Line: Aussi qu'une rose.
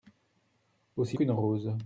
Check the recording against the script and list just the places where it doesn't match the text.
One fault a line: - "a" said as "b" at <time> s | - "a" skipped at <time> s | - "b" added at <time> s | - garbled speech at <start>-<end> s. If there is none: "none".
none